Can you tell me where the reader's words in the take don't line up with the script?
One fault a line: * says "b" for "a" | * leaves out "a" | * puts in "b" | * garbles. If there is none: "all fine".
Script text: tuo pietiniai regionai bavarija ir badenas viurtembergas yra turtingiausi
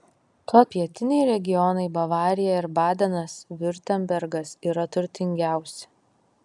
all fine